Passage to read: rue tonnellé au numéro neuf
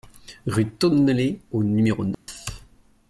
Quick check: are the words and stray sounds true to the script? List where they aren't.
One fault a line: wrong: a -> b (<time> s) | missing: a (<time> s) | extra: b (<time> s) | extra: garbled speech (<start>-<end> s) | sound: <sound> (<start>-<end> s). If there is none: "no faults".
sound: dropout (2.1-2.3 s)